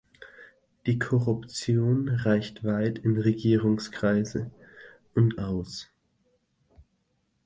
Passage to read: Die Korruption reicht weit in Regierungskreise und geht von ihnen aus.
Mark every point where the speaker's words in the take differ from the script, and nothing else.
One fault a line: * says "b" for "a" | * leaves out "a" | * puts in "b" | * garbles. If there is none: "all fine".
* leaves out "geht von ihnen"